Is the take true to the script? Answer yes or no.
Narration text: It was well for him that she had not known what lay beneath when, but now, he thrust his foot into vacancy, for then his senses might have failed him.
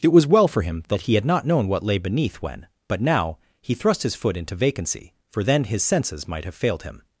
no